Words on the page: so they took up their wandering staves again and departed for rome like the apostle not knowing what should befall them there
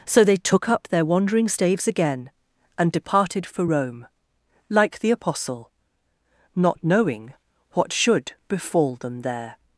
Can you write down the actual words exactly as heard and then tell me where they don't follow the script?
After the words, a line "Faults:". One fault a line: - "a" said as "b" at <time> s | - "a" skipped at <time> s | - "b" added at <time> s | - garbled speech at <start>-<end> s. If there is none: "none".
so they took up their wandering staves again and departed for rome like the apostle not knowing what should befall them there
Faults:
none